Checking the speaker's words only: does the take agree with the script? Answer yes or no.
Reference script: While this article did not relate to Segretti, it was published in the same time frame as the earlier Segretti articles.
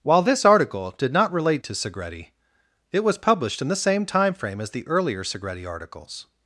yes